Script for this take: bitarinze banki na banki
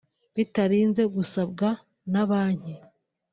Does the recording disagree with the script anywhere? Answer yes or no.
yes